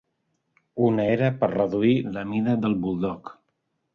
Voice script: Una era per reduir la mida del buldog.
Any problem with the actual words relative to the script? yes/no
no